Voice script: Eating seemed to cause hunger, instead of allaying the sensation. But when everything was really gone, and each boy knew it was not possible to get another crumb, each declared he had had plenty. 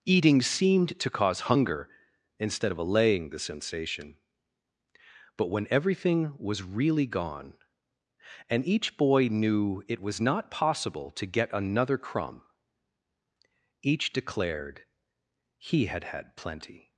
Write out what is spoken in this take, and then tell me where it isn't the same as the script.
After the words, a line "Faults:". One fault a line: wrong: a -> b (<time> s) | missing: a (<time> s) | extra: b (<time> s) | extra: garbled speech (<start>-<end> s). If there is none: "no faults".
Eating seemed to cause hunger, instead of allaying the sensation. But when everything was really gone, and each boy knew it was not possible to get another crumb, each declared he had had plenty.
Faults:
no faults